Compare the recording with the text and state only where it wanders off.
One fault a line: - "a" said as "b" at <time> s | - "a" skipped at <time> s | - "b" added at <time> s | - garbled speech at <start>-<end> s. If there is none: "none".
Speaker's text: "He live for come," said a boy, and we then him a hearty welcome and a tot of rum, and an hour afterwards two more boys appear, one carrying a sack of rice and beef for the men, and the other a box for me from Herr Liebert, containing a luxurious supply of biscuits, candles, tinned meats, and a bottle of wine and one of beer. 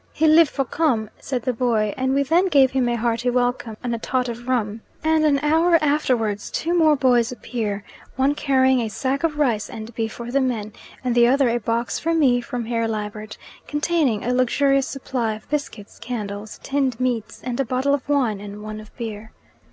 - "a" said as "the" at 1.4 s
- "gave" added at 2.5 s